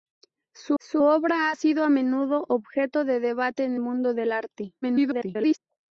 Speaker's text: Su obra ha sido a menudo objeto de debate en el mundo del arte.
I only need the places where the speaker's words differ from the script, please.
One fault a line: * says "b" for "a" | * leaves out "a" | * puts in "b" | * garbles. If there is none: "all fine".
* puts in "su"
* leaves out "el"
* garbles